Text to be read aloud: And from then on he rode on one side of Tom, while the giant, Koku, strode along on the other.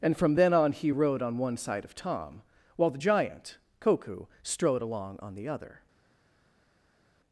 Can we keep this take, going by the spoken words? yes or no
yes